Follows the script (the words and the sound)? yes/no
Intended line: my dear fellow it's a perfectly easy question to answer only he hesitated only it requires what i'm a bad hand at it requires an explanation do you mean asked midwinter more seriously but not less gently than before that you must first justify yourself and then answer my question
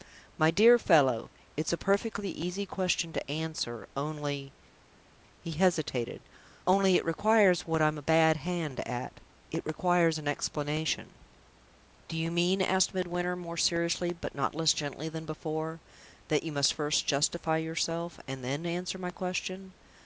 yes